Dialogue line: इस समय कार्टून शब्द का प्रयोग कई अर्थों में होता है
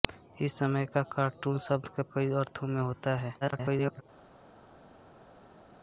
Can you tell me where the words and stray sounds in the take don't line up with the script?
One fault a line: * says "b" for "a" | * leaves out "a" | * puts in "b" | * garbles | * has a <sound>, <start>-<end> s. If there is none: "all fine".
* leaves out "प्रयोग"
* garbles